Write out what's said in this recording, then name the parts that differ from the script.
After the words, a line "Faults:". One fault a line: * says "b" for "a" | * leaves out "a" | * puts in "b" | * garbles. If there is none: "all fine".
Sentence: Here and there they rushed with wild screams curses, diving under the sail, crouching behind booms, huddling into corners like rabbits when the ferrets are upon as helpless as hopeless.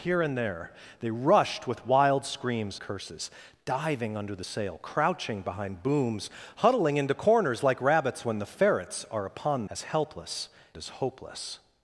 Here and there they rushed with wild screams curses, diving under the sail, crouching behind booms, huddling into corners like rabbits when the ferrets are upon as helpless as hopeless.
Faults:
all fine